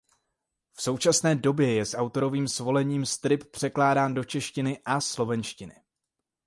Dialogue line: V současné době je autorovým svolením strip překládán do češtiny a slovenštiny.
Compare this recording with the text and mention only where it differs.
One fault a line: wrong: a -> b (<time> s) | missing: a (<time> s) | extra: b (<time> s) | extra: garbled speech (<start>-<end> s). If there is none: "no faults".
extra: s (1.9 s)